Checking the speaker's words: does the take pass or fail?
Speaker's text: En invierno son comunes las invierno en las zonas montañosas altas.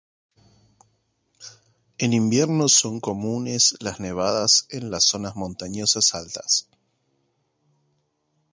fail